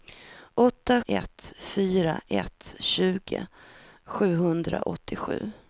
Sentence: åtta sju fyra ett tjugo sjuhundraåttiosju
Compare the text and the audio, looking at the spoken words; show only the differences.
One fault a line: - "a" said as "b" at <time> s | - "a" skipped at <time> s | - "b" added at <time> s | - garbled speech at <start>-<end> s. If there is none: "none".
- "sju" said as "ett" at 1.0 s